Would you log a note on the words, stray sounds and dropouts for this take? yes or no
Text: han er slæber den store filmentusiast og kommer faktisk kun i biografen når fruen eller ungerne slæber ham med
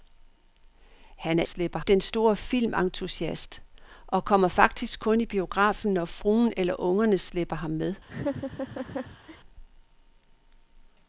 yes